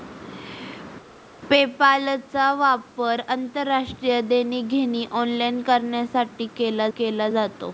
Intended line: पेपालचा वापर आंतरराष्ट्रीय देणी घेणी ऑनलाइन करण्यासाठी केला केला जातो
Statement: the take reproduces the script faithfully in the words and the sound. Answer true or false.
true